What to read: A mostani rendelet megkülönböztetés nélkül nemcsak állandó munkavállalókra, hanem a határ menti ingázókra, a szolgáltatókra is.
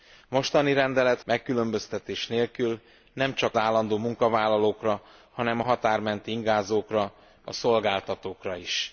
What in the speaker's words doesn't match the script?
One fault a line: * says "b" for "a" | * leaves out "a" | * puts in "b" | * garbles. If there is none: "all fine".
all fine